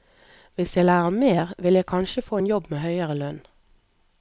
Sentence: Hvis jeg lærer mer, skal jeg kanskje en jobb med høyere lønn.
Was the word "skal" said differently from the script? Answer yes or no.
yes